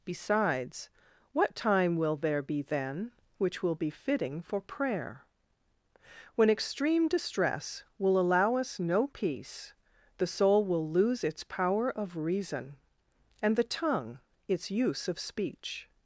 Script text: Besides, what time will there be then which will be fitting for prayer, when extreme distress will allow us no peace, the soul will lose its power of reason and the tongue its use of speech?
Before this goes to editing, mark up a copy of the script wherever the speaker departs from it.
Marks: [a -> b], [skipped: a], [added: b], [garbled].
Besides, what time will there be then which will be fitting for prayer, when extreme distress will allow us no peace, the soul will lose its power of reason and the tongue its use of speech?